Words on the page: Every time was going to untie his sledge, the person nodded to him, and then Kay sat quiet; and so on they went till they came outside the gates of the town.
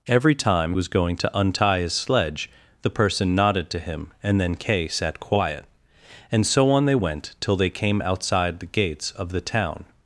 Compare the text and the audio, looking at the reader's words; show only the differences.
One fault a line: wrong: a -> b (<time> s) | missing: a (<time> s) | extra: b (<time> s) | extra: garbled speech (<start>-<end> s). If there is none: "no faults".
no faults